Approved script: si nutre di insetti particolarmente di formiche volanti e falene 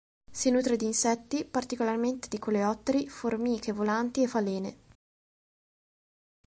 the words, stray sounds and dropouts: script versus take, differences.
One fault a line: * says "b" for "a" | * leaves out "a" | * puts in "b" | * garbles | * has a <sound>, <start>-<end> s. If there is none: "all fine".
* puts in "coleotteri"